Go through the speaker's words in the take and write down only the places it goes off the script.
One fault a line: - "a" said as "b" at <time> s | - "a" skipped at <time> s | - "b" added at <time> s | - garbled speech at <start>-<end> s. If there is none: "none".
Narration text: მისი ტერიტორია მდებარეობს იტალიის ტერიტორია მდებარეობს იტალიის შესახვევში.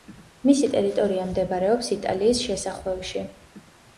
- "ტერიტორია მდებარეობს იტალიის" skipped at 2.4 s